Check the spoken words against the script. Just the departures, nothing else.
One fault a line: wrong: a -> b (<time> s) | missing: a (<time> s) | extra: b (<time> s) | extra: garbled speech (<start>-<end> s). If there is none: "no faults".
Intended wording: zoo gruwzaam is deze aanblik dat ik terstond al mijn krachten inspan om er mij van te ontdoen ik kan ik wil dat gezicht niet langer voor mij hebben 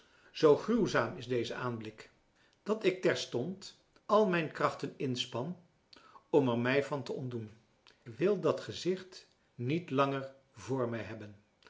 missing: ik kan ik (7.5 s)